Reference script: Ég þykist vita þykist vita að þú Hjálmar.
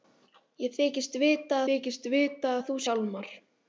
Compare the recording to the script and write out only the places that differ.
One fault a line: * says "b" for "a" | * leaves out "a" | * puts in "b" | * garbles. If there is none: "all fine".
all fine